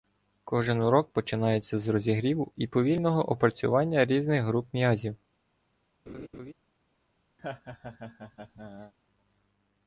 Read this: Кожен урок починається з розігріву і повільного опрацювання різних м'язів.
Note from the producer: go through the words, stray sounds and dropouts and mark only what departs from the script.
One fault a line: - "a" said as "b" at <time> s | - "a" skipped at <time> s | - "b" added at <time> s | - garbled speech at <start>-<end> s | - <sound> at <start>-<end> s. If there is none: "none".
- "груп" added at 4.4 s
- laugh at 6.1-6.5 s
- laugh at 7.4-8.9 s